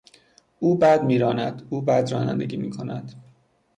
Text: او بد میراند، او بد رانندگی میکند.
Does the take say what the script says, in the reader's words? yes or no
yes